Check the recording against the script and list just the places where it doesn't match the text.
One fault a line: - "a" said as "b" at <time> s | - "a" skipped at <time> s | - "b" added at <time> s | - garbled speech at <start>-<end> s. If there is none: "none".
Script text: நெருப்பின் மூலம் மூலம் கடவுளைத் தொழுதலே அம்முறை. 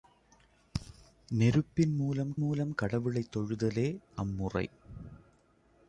none